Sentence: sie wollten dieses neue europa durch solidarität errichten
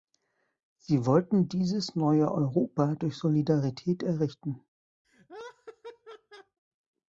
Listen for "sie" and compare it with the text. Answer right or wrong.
right